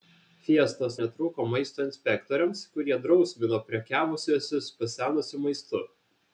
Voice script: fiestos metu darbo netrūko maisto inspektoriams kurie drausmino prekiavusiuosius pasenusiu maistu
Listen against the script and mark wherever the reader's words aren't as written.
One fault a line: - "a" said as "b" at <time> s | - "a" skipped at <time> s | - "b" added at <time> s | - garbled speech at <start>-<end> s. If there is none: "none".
- "metu darbo" skipped at 0.9 s